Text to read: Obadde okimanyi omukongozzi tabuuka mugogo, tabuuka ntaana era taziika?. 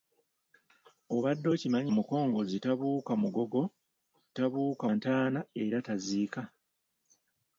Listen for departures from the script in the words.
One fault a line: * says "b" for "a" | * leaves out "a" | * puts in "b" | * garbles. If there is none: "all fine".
all fine